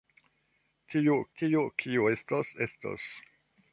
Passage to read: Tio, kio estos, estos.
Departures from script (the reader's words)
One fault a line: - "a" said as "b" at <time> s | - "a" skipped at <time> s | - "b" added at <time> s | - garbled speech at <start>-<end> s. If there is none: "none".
- "tio" added at 1.4 s